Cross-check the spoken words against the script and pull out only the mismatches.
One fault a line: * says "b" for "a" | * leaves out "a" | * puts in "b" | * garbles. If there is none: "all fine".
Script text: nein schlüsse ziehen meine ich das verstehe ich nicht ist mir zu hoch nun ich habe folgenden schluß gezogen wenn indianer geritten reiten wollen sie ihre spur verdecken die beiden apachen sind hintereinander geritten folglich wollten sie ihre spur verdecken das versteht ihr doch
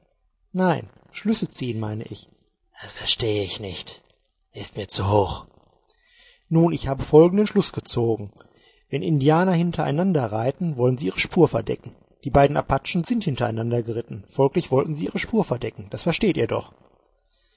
* says "hintereinander" for "geritten"